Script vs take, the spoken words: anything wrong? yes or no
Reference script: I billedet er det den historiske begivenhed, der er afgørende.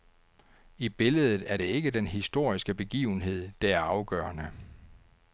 yes